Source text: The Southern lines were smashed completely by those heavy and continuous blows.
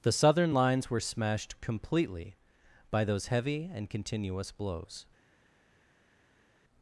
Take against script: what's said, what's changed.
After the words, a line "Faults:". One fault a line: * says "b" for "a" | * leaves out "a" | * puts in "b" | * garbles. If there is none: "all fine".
The Southern lines were smashed completely by those heavy and continuous blows.
Faults:
all fine